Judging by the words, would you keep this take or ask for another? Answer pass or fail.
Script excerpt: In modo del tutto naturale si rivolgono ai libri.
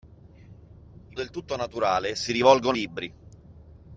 fail